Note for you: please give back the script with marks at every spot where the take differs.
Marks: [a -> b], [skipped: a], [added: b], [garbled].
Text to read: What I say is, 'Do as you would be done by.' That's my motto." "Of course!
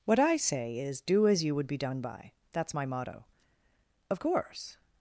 What I say is, 'Do as you would be done by.' That's my motto." "Of course!